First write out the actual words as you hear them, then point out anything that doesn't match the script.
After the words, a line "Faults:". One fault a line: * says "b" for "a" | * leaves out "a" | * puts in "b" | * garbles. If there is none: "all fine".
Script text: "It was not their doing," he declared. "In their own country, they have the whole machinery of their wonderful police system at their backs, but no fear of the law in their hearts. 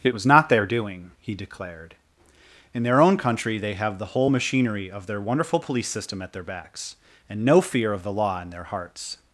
"It was not their doing," he declared. "In their own country, they have the whole machinery of their wonderful police system at their backs, and no fear of the law in their hearts.
Faults:
* says "and" for "but"